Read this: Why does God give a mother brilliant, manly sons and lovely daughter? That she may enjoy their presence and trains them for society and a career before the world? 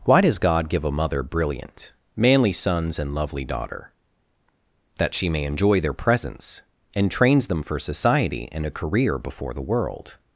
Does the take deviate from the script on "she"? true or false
false